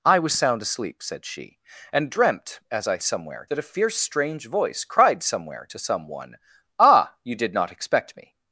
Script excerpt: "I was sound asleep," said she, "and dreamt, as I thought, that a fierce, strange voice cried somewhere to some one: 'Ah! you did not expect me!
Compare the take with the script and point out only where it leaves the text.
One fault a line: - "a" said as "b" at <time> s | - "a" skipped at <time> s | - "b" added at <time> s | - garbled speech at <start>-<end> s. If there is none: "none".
- "thought" said as "somewhere" at 3.0 s